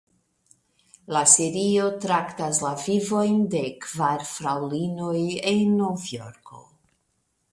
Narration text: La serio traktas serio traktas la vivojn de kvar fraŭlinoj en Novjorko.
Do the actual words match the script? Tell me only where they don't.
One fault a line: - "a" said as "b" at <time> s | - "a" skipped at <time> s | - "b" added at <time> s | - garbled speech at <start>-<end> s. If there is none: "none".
- "serio traktas" skipped at 2.6 s